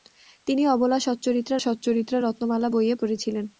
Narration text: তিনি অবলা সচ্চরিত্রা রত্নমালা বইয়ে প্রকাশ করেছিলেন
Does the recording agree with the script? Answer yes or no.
no